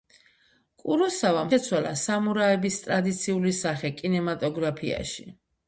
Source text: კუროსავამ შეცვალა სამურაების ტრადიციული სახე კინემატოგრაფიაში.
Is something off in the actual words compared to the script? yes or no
no